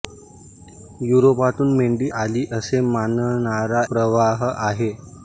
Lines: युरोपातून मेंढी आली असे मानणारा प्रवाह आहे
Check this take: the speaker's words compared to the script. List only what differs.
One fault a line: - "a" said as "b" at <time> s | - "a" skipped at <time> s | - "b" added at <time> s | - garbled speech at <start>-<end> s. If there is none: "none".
none